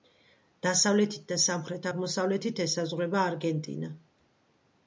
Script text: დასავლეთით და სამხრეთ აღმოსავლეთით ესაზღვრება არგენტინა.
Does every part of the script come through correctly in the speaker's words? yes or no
yes